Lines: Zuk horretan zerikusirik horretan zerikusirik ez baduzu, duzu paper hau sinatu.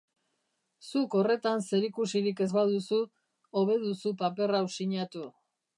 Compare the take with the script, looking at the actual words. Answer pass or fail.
fail